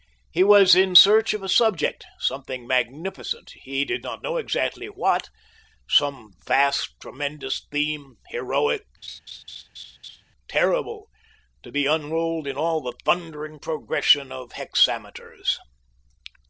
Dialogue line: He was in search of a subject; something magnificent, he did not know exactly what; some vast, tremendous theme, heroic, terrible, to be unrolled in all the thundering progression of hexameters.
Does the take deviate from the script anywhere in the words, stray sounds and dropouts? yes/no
yes